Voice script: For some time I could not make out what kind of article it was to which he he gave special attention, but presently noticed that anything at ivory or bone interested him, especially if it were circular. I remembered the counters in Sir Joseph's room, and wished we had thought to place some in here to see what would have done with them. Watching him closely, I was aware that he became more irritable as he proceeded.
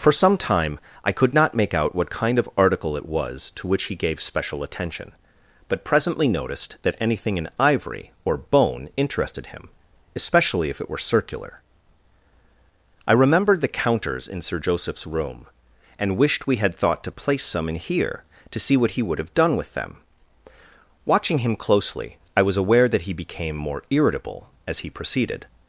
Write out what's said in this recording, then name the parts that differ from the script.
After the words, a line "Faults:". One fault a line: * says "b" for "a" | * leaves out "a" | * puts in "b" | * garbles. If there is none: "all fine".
For some time I could not make out what kind of article it was to which he gave special attention, but presently noticed that anything in ivory or bone interested him, especially if it were circular. I remembered the counters in Sir Joseph's room, and wished we had thought to place some in here to see what he would have done with them. Watching him closely, I was aware that he became more irritable as he proceeded.
Faults:
* leaves out "he"
* says "in" for "at"
* puts in "he"